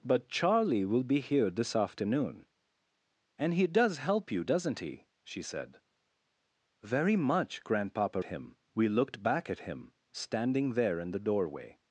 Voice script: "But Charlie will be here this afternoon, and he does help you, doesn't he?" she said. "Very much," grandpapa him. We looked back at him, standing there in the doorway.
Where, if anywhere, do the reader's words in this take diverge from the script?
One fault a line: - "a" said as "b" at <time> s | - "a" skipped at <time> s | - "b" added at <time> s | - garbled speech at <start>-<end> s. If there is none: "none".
none